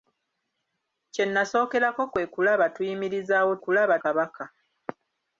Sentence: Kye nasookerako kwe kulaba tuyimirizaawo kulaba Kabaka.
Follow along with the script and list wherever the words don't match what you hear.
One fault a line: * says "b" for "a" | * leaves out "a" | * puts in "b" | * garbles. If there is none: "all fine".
all fine